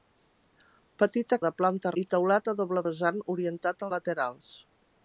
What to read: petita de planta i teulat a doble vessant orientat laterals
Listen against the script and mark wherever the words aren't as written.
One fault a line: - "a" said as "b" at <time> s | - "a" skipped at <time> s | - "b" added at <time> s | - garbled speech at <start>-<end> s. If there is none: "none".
none